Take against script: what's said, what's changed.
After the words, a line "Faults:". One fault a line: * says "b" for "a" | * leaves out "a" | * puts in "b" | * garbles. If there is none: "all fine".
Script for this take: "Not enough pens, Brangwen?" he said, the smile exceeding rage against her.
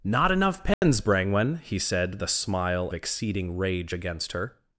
"Not enough pens, Brangwen?" he said, the smile exceeding rage against her.
Faults:
all fine